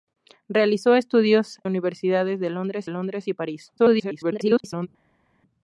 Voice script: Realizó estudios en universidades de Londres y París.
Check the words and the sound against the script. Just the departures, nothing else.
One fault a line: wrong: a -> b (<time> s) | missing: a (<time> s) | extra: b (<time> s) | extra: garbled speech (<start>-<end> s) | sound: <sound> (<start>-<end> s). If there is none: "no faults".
missing: en (1.6 s)
extra: Londres (2.9 s)
extra: garbled speech (3.8-4.9 s)